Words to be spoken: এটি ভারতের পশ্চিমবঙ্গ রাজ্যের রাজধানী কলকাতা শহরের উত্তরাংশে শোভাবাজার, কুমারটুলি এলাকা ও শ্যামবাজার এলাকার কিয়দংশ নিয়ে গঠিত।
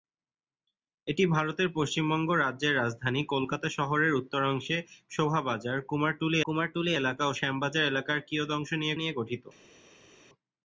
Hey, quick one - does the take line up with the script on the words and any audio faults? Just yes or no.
no